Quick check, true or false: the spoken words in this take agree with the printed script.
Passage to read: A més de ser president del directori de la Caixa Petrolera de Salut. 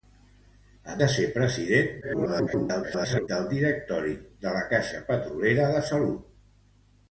false